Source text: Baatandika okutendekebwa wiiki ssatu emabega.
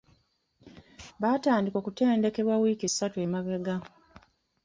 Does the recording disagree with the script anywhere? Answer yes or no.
no